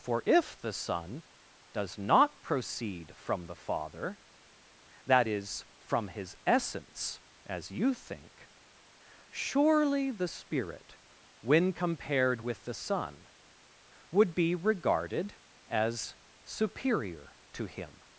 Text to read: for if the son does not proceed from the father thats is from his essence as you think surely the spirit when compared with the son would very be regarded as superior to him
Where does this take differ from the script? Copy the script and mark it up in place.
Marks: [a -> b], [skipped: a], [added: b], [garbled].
for if the son does not proceed from the father [thats -> that] is from his essence as you think surely the spirit when compared with the son would [skipped: very] be regarded as superior to him